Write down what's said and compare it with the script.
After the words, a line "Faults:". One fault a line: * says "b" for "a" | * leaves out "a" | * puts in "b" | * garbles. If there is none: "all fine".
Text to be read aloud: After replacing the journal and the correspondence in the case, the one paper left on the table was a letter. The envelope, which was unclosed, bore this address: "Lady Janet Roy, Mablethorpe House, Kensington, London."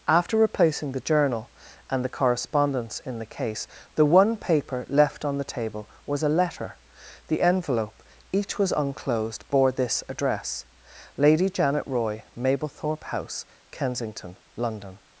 After replacing the journal and the correspondence in the case, the one paper left on the table was a letter. The envelope, each was unclosed, bore this address: "Lady Janet Roy, Mablethorpe House, Kensington, London."
Faults:
* says "each" for "which"